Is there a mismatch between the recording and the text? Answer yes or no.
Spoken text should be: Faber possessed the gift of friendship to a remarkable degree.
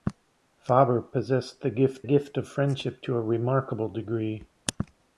yes